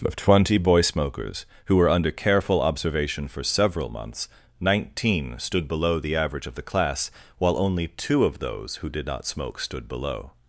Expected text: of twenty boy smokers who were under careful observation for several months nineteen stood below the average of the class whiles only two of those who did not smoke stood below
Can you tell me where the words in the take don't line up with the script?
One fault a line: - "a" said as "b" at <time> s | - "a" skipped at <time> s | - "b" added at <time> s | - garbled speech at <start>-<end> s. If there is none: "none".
- "whiles" said as "while" at 7.4 s